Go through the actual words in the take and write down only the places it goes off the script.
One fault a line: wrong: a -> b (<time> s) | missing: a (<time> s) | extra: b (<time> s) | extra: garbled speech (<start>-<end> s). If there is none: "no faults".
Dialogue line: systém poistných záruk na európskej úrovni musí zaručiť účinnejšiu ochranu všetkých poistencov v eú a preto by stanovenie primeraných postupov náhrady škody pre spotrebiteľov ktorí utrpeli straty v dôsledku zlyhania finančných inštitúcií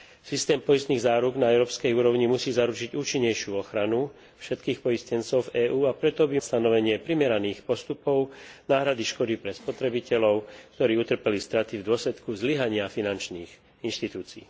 no faults